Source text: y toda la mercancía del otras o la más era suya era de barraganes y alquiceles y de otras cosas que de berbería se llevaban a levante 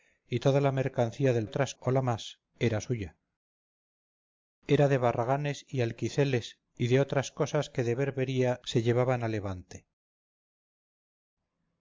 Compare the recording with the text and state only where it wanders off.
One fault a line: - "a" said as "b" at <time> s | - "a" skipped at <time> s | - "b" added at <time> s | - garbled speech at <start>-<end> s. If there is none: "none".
none